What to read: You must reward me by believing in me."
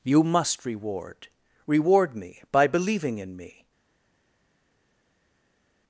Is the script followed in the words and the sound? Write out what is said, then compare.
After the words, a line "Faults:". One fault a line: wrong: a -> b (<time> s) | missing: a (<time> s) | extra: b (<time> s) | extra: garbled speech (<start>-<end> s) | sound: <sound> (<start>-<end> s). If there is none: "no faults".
You must reward reward me by believing in me."
Faults:
extra: reward (1.7 s)